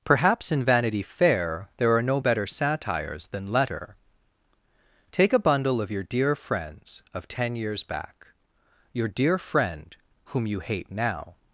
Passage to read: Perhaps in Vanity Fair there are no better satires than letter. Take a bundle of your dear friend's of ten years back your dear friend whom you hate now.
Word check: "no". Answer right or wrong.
right